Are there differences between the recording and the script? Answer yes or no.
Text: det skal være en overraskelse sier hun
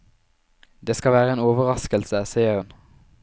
no